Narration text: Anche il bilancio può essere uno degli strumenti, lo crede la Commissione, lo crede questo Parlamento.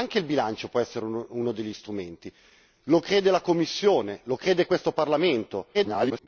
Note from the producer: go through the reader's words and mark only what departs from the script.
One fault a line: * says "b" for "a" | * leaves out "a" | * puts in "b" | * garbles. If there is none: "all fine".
* garbles